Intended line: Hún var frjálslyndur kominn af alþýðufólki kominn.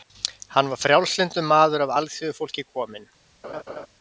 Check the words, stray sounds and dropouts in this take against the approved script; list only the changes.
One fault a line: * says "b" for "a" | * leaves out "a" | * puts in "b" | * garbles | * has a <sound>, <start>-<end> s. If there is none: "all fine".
* says "Hann" for "Hún"
* says "maður" for "kominn"
* has a laugh, 3.4-3.9 s